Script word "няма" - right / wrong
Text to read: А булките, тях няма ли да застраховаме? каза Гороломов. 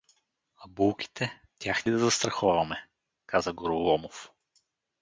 wrong